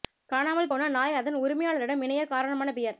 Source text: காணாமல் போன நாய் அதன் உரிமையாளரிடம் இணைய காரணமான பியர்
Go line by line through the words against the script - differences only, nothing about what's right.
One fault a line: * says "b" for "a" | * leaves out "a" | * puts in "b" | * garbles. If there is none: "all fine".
all fine